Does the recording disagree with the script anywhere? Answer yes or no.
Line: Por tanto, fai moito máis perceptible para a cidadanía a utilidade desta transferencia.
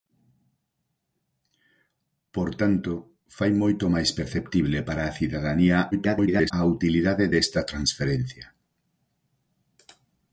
yes